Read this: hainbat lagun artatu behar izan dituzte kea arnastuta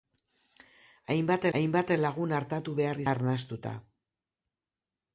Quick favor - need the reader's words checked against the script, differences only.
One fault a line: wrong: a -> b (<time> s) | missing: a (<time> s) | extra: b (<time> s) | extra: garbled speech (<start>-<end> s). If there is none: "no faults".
extra: hainbat (1.6 s)
missing: izan dituzte kea (3.0 s)